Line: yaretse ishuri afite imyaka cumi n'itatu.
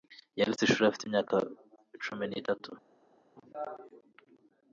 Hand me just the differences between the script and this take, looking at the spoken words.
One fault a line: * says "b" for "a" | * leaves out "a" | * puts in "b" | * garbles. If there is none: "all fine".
all fine